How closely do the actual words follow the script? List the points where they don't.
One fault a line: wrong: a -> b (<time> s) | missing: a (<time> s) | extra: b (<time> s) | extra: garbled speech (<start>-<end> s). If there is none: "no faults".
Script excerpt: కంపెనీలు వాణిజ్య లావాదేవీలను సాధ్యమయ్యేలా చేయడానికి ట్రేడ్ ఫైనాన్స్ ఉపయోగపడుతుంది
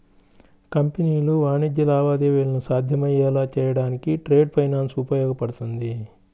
no faults